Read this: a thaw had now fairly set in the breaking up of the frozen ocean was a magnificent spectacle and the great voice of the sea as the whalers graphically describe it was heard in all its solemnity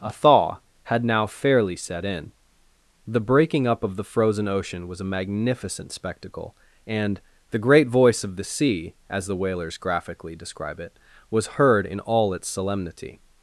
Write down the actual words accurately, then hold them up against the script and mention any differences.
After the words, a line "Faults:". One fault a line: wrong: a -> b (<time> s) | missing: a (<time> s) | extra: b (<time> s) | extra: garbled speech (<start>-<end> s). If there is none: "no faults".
a thaw had now fairly set in the breaking up of the frozen ocean was a magnificent spectacle and the great voice of the sea as the whalers graphically describe it was heard in all its solemnity
Faults:
no faults